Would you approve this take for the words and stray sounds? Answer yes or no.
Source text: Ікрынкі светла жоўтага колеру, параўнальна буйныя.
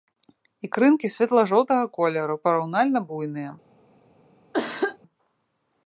no